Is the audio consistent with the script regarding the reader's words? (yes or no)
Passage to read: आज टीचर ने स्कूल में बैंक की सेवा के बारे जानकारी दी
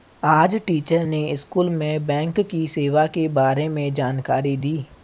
no